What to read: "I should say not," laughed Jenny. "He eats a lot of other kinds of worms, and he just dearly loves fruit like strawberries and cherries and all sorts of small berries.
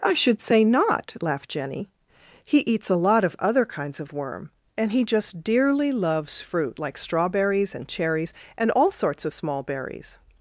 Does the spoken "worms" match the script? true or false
false